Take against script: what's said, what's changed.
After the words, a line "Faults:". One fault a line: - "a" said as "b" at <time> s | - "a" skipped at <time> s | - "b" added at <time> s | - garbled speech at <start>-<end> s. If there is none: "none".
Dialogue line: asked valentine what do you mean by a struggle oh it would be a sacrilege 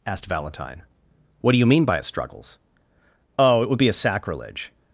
asked valentine what do you mean by a struggles oh it would be a sacrilege
Faults:
- "struggle" said as "struggles" at 2.0 s